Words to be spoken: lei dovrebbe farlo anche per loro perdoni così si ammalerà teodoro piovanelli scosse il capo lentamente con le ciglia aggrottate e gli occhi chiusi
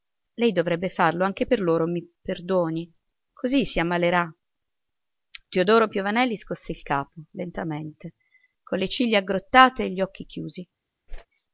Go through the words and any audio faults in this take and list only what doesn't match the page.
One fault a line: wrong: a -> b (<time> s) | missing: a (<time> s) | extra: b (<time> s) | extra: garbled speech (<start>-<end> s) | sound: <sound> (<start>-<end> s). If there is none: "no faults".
extra: mi (1.8 s)
sound: whoosh (11.1-11.3 s)